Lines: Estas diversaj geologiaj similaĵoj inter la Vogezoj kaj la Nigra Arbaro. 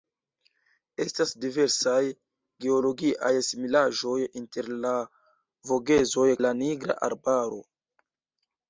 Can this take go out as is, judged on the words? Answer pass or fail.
fail